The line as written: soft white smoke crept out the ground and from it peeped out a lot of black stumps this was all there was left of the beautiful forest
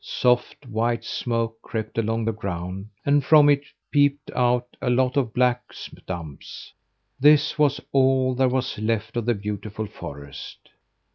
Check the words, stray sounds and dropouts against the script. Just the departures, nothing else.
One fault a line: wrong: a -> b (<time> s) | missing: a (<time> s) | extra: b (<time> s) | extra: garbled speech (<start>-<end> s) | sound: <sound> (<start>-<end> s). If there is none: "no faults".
wrong: out -> along (1.9 s)